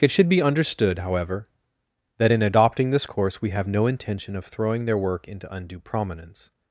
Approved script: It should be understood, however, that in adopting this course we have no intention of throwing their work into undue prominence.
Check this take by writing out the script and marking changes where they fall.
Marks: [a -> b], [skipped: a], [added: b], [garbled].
It should be understood, however, that in adopting this course we have no intention of throwing their work into undue prominence.